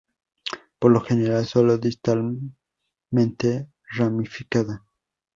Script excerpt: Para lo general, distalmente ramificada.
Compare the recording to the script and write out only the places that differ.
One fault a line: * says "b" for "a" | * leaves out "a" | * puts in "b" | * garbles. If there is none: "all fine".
* says "Por" for "Para"
* puts in "sólo"